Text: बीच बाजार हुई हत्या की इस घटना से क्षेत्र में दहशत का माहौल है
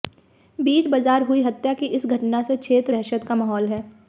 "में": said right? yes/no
no